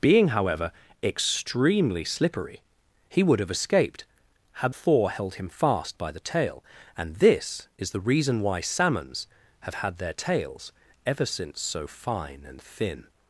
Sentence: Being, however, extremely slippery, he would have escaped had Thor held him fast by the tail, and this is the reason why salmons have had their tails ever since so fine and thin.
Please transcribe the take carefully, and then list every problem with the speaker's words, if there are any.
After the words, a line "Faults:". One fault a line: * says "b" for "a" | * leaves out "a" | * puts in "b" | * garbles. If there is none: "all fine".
Being, however, extremely slippery, he would have escaped had Thor held him fast by the tail, and this is the reason why salmons have had their tails ever since so fine and thin.
Faults:
all fine